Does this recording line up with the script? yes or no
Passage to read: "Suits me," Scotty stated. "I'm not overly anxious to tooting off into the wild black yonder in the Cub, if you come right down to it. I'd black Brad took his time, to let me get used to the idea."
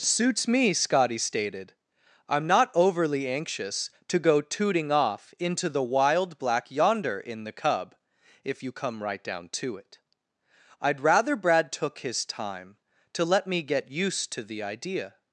no